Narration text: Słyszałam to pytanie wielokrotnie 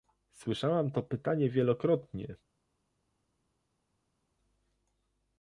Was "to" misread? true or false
false